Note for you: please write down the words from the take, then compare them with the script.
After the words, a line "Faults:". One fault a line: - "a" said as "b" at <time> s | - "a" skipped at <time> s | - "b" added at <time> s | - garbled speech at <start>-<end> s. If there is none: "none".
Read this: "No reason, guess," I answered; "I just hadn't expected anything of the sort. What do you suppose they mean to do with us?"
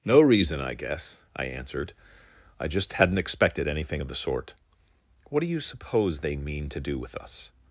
"No reason, I guess," I answered; "I just hadn't expected anything of the sort. What do you suppose they mean to do with us?"
Faults:
- "I" added at 0.6 s